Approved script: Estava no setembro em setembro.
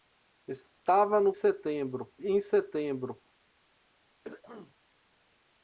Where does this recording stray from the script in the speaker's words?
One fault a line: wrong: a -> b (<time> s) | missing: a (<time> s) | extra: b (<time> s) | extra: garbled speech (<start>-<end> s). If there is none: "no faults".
no faults